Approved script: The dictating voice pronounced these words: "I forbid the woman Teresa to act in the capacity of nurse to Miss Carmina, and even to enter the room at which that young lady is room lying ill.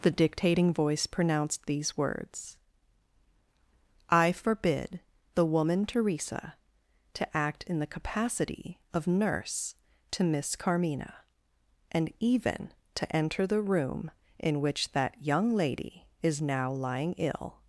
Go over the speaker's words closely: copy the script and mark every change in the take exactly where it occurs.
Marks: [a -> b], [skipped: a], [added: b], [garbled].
The dictating voice pronounced these words: "I forbid the woman Teresa to act in the capacity of nurse to Miss Carmina, and even to enter the room [at -> in] which that young lady is [room -> now] lying ill.